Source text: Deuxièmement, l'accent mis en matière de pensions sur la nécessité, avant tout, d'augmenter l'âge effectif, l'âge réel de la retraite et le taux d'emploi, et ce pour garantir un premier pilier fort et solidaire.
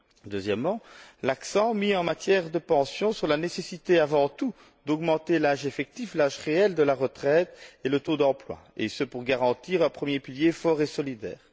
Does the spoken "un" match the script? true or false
true